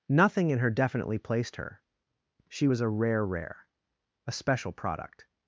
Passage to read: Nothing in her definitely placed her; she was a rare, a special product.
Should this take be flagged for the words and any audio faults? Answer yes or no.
yes